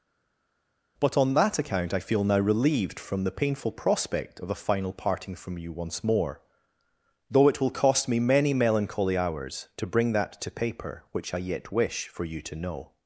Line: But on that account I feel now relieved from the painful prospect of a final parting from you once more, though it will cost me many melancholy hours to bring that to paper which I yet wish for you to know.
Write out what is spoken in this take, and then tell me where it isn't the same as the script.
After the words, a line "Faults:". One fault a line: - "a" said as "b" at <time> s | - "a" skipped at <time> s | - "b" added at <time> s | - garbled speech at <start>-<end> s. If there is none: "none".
But on that account I feel now relieved from the painful prospect of a final parting from you once more, though it will cost me many melancholy hours to bring that to paper which I yet wish for you to know.
Faults:
none